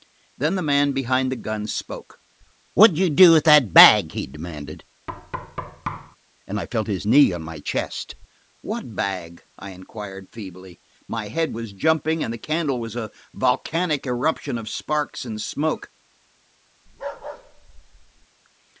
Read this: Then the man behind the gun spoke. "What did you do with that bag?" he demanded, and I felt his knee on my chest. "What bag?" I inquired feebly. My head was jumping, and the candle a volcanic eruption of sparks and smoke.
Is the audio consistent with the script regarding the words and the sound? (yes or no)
no